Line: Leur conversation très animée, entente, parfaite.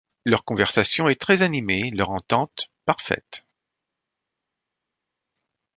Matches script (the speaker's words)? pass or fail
fail